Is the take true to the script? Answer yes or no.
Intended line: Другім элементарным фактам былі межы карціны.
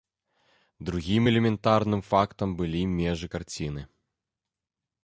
yes